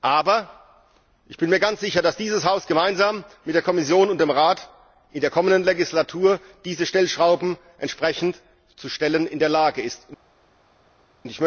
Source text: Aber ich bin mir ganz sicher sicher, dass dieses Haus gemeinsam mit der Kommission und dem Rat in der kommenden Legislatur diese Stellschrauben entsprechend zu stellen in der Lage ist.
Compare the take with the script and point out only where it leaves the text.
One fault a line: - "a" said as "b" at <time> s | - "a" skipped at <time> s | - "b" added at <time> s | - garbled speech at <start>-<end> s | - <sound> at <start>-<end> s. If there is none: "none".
- "sicher" skipped at 2.0 s